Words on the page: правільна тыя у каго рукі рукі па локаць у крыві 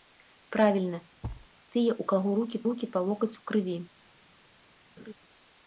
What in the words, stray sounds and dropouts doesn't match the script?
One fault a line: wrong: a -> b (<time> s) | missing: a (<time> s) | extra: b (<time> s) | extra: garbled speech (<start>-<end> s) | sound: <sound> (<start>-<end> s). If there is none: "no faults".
sound: thud (1.2-1.5 s)
sound: laugh (5.0-5.1 s)